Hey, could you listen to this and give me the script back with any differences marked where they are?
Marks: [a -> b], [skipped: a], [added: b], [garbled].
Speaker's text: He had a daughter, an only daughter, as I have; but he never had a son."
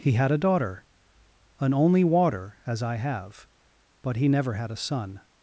He had a daughter, an only [daughter, -> water] as I have; but he never had a son."